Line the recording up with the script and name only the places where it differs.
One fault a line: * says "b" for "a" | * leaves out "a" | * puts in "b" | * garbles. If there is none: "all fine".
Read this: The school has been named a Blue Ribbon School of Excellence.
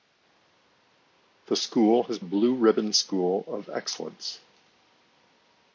* leaves out "been named a"